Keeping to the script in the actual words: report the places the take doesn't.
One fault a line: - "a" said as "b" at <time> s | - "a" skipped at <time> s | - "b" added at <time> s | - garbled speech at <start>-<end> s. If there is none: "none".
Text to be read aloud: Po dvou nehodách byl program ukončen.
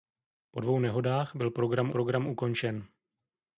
- "program" added at 1.9 s